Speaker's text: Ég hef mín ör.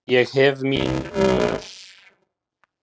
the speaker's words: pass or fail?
pass